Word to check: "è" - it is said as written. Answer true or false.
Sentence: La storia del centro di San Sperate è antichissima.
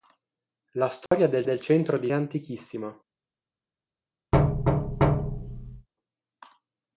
false